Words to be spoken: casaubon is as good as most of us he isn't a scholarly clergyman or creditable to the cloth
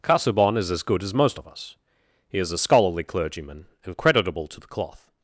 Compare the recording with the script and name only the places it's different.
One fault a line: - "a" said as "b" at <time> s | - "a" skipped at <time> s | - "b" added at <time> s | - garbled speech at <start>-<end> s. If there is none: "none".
- "isn't" said as "is" at 2.4 s
- "or" said as "and" at 3.8 s